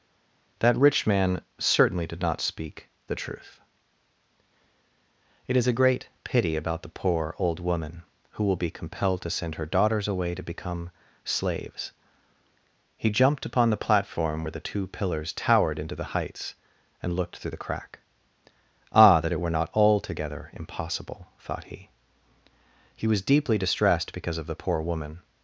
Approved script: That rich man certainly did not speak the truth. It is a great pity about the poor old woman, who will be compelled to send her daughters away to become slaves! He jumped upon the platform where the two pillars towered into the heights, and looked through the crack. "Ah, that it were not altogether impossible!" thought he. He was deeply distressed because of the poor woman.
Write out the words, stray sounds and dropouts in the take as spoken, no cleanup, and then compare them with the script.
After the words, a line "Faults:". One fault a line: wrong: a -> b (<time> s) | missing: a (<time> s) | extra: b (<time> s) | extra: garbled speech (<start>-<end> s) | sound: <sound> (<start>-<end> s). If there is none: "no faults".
That rich man certainly did not speak the truth. It is a great pity about the poor old woman, who will be compelled to send her daughters away to become slaves! He jumped upon the platform where the two pillars towered into the heights, and looked through the crack. "Ah, that it were not altogether impossible!" thought he. He was deeply distressed because of the poor woman.
Faults:
no faults